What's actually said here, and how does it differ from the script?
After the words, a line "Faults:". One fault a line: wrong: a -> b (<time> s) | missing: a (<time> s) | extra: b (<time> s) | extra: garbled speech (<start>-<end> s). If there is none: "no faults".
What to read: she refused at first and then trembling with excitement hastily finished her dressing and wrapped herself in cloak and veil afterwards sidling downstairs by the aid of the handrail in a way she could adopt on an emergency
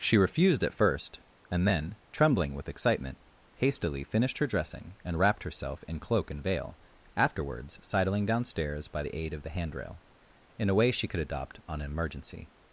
she refused at first and then trembling with excitement hastily finished her dressing and wrapped herself in cloak and veil afterwards sidling downstairs by the aid of the handrail in a way she could adopt on an emergency
Faults:
no faults